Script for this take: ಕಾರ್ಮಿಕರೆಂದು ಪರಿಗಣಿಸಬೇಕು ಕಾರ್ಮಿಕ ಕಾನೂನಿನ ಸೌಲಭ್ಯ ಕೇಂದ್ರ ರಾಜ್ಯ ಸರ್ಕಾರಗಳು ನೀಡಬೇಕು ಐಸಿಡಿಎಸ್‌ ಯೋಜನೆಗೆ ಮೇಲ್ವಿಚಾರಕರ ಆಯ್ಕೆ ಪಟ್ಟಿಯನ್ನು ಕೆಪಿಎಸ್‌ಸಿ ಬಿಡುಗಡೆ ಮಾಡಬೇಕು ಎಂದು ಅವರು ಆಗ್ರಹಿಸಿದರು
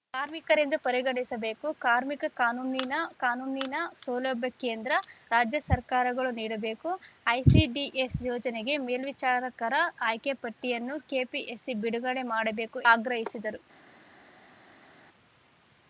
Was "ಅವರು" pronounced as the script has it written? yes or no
no